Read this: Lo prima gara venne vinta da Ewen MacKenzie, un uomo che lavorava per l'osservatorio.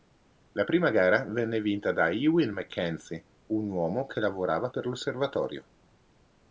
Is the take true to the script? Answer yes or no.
no